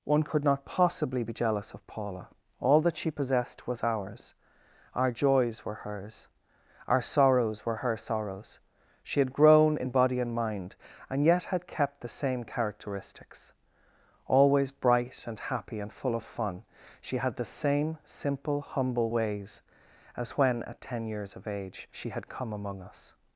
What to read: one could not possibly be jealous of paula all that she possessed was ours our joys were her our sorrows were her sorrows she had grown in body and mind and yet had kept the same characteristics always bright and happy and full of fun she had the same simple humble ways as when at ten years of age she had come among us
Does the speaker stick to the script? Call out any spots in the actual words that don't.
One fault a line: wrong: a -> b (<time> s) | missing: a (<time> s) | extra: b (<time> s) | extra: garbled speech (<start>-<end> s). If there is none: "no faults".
wrong: her -> hers (5.9 s)